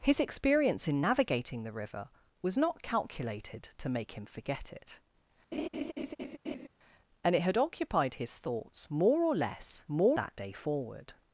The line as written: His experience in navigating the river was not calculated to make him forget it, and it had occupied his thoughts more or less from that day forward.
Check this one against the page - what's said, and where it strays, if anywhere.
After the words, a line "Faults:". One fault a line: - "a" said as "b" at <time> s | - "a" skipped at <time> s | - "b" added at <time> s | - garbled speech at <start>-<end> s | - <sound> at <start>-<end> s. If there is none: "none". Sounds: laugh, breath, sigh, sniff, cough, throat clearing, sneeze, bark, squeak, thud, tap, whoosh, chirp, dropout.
His experience in navigating the river was not calculated to make him forget it, and it had occupied his thoughts more or less more that day forward.
Faults:
- laugh at 5.5-6.7 s
- "from" said as "more" at 9.9 s